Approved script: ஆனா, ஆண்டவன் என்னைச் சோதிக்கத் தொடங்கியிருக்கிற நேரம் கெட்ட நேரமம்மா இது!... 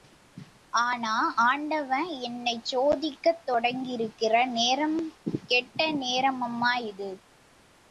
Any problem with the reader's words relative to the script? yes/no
no